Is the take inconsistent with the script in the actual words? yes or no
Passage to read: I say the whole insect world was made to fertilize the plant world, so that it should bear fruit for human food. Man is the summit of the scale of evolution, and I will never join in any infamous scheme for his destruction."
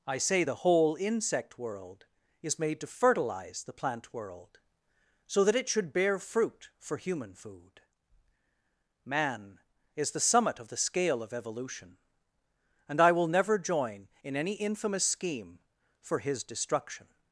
yes